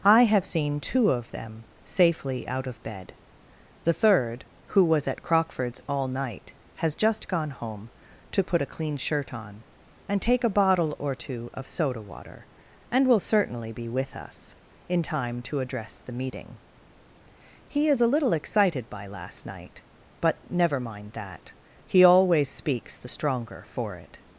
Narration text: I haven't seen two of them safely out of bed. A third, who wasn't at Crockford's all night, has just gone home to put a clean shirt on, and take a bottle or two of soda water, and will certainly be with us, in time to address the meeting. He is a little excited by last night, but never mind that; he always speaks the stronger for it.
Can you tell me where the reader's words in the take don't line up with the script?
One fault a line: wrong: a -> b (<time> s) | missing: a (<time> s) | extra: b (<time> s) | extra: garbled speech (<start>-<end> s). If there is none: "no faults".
wrong: haven't -> have (0.2 s)
wrong: A -> The (3.8 s)
wrong: wasn't -> was (4.8 s)